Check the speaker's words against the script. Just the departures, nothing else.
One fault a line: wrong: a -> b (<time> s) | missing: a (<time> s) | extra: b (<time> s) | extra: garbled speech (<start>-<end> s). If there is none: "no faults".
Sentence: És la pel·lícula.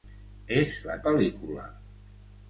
no faults